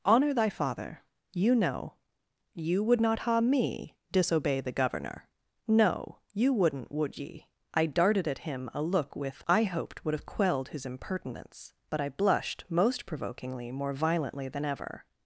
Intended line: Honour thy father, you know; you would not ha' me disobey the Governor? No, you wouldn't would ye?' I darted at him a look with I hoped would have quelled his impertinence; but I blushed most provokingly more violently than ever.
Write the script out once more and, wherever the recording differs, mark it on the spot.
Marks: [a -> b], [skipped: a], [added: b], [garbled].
Honour thy father, you know; you would not ha' me disobey the Governor? No, you wouldn't would ye?' I darted at him a look with I hoped would have quelled his impertinence; but I blushed most provokingly more violently than ever.